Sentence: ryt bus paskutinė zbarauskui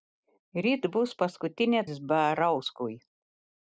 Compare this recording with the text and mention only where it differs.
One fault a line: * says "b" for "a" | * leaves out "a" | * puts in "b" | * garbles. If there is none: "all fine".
all fine